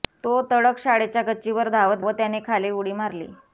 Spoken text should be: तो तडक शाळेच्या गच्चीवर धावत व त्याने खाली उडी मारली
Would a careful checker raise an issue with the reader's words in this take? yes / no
no